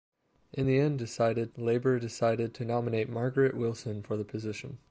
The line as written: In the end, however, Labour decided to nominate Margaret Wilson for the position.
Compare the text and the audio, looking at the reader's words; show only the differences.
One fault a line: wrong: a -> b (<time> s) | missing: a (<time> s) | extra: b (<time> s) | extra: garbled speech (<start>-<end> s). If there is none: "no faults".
wrong: however -> decided (1.0 s)